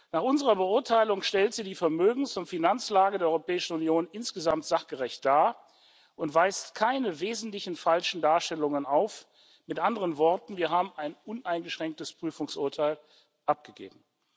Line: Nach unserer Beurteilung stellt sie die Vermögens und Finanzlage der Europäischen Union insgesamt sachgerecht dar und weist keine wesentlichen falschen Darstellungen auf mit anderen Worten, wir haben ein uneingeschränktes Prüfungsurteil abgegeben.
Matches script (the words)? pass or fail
pass